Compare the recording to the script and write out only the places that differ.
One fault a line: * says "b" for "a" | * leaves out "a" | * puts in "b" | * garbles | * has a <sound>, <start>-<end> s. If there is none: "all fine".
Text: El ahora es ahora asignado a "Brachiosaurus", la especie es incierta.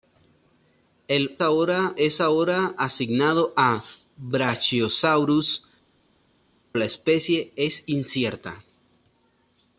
all fine